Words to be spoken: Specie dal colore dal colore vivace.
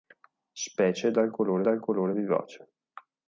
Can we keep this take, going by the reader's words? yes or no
yes